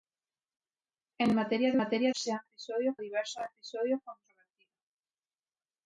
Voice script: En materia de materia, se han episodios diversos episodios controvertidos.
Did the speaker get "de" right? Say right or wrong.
right